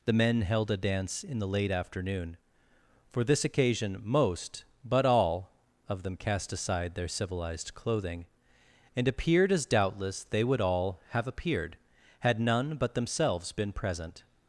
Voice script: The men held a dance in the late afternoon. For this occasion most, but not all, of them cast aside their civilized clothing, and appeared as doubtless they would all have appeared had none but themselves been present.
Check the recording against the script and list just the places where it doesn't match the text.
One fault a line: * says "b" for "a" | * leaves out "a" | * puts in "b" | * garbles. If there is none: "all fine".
* leaves out "not"